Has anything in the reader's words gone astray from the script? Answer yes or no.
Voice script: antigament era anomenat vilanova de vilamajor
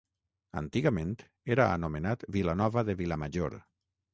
no